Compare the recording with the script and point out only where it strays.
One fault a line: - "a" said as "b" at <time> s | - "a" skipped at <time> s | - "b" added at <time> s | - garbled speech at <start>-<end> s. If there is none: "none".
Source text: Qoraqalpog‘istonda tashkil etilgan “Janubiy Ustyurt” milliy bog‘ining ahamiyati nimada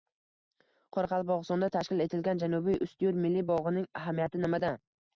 none